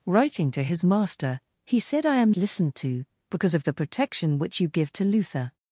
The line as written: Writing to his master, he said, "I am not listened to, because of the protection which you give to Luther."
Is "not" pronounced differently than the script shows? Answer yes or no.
yes